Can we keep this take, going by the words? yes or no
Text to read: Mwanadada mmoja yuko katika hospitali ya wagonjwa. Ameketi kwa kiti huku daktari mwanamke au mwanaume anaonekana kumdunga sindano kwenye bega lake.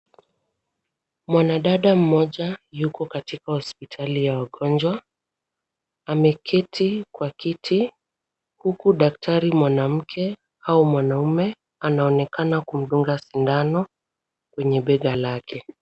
yes